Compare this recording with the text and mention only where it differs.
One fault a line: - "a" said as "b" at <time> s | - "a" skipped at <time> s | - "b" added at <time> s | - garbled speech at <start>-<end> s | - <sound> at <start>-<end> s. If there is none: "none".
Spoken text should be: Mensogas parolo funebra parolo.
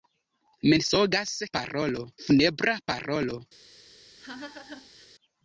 - laugh at 4.2-5.1 s